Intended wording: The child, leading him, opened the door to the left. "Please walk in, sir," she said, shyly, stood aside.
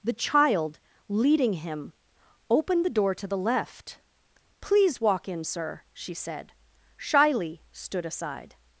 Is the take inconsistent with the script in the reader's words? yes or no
no